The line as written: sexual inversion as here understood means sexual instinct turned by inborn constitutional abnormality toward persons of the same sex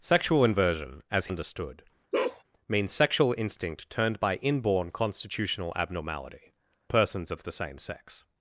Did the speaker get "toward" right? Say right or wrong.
wrong